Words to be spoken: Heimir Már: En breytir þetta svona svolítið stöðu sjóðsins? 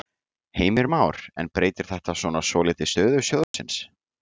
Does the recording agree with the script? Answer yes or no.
yes